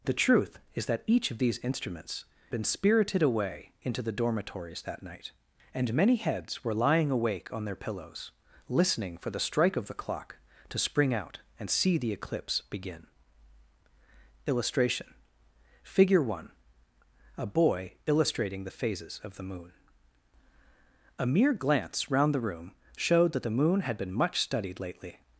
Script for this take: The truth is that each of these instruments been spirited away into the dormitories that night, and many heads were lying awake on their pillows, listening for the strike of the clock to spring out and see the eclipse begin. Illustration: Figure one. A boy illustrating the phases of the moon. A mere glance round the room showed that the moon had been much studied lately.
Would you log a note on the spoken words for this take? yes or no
no